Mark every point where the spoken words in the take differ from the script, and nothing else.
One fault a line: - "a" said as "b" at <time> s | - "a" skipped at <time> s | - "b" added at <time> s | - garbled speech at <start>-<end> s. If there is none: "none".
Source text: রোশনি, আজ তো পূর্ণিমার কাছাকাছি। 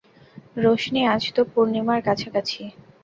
none